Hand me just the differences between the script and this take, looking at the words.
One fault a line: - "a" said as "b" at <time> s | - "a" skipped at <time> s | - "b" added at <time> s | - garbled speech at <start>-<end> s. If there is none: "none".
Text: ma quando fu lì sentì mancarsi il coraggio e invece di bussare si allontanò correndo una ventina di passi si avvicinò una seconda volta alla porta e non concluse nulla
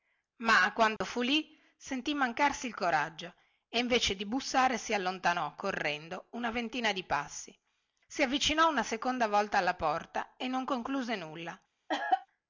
none